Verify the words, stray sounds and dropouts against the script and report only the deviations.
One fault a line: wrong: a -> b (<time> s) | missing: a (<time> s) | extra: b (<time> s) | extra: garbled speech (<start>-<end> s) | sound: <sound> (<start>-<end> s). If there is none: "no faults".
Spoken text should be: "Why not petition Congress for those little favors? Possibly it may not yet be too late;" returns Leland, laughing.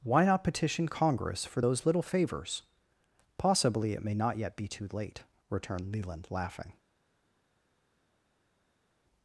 wrong: returns -> returned (5.5 s)